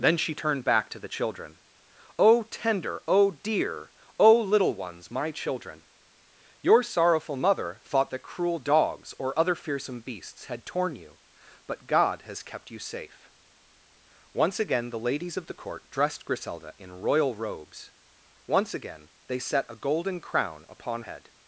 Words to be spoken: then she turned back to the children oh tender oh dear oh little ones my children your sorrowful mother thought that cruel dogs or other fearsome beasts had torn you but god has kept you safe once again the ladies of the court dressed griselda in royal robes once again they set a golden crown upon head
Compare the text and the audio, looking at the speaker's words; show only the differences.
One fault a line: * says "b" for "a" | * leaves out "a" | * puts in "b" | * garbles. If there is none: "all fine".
all fine